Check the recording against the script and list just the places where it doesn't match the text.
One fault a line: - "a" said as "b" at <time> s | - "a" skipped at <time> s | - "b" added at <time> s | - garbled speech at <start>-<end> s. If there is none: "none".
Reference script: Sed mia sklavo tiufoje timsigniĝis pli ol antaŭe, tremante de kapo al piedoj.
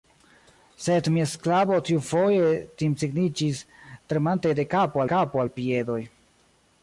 - "pli ol antaŭe" skipped at 3.6 s
- "kapo" added at 5.2 s